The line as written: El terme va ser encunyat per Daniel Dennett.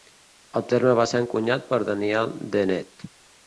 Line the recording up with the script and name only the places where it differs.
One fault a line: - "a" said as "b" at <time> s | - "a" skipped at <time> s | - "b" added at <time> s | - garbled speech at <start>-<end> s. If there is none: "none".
none